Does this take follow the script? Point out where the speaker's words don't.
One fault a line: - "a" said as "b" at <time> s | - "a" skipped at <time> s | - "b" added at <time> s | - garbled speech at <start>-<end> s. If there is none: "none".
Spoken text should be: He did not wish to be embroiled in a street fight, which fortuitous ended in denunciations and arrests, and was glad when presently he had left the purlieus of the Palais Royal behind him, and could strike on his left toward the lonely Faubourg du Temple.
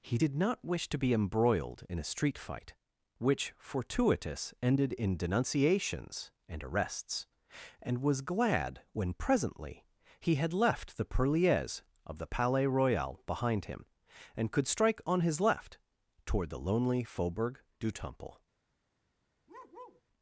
none